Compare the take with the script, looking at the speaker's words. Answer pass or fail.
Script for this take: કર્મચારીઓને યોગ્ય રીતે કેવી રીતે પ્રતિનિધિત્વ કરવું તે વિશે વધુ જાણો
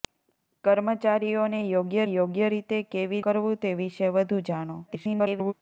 fail